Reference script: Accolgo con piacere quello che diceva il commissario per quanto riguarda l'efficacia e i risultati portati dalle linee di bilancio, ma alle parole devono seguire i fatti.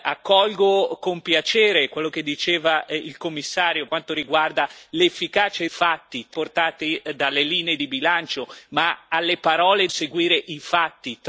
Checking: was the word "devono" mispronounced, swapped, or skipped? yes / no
yes